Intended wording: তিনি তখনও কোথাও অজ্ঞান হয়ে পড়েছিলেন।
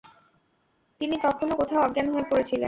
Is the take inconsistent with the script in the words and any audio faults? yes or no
no